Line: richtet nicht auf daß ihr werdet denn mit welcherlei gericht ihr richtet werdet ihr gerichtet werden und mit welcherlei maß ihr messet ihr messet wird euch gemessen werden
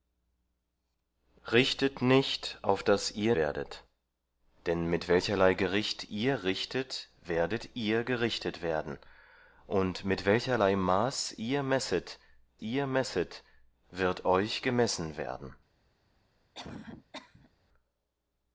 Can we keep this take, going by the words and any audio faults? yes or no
no